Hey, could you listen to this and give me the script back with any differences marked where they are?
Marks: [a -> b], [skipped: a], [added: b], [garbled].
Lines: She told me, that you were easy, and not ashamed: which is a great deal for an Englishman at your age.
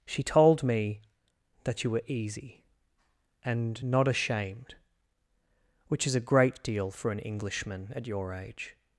She told me, that you were easy, and not ashamed: which is a great deal for an Englishman at your age.